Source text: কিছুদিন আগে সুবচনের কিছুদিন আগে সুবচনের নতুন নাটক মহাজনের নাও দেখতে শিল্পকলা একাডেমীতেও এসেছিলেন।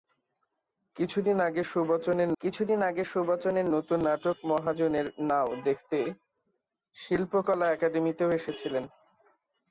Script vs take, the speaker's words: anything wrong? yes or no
no